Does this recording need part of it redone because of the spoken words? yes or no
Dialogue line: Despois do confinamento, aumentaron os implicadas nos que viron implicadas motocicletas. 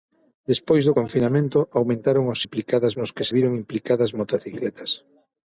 no